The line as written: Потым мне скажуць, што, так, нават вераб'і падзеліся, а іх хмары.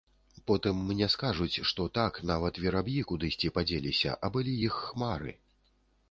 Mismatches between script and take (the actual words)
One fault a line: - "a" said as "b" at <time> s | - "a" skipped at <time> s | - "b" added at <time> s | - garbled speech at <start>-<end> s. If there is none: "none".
- "кудысьці" added at 3.1 s
- "былі" added at 4.4 s